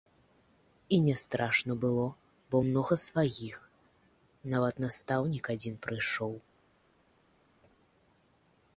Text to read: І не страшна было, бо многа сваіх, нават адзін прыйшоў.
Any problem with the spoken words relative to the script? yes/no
yes